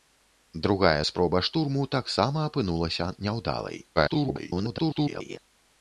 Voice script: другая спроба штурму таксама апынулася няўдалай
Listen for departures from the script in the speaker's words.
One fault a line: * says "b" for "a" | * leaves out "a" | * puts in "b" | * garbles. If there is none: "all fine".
* garbles